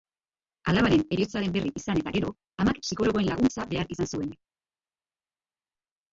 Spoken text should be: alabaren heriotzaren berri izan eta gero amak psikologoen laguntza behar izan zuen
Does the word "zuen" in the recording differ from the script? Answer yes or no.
no